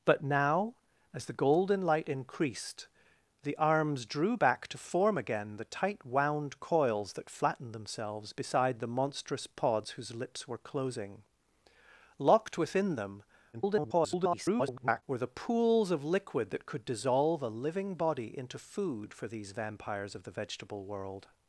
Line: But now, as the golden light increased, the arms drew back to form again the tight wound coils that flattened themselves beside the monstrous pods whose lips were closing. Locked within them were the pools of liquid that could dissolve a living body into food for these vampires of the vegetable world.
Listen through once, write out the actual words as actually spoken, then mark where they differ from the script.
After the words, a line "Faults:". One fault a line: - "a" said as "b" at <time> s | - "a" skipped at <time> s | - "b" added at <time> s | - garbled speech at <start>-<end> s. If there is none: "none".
But now, as the golden light increased, the arms drew back to form again the tight wound coils that flattened themselves beside the monstrous pods whose lips were closing. Locked within them [garbled] were the pools of liquid that could dissolve a living body into food for these vampires of the vegetable world.
Faults:
- garbled speech at 13.5-15.0 s